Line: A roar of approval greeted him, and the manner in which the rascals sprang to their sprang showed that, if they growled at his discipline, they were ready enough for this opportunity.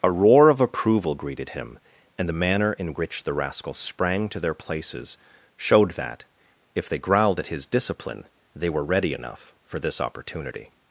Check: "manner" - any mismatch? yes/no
no